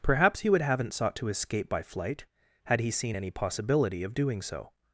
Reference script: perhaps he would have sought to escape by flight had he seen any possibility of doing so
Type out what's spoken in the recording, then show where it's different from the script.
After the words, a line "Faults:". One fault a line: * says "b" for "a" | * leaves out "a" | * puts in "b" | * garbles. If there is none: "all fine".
perhaps he would haven't sought to escape by flight had he seen any possibility of doing so
Faults:
* says "haven't" for "have"